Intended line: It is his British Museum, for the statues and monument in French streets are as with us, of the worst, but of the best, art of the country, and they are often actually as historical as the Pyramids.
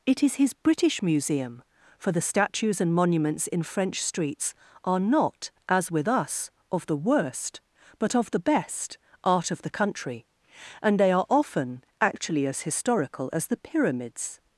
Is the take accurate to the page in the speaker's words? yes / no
no